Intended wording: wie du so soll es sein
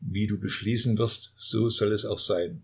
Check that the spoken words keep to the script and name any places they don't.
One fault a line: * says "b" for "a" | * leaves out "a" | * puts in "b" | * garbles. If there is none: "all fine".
* puts in "beschließen wirst"
* puts in "auch"